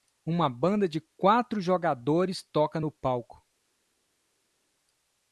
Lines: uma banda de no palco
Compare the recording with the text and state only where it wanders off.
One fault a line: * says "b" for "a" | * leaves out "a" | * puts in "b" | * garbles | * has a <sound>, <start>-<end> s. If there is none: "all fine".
* puts in "quatro jogadores toca"